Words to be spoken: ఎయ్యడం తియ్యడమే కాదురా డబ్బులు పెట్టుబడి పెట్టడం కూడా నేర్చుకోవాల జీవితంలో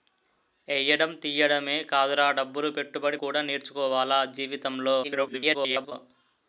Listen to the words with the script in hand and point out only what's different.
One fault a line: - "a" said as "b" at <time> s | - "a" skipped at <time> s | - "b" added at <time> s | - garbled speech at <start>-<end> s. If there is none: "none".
- "పెట్టడం" skipped at 3.2 s
- garbled speech at 5.0-5.9 s